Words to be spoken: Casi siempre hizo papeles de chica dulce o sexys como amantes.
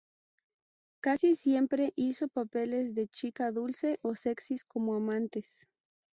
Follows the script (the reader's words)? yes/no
yes